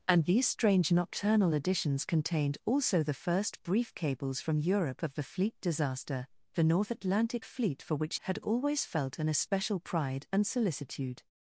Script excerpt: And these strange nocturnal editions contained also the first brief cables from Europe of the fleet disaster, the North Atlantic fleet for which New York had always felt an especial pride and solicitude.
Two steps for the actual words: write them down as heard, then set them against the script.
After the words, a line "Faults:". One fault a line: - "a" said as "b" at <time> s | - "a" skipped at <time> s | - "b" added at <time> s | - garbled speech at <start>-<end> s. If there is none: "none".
And these strange nocturnal editions contained also the first brief cables from Europe of the fleet disaster, the North Atlantic fleet for which Had always felt an especial pride and solicitude.
Faults:
- "New York" skipped at 8.2 s